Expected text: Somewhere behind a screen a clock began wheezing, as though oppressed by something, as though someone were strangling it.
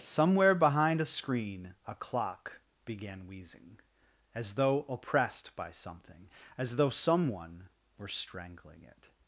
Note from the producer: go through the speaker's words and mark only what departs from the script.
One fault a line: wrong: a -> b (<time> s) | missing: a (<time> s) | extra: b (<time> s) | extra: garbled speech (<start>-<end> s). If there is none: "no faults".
no faults